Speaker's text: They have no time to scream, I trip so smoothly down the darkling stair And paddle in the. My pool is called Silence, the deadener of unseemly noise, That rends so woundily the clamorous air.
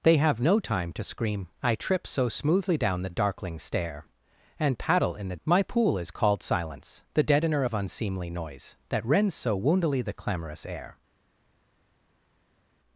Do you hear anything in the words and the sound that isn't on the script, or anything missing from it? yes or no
no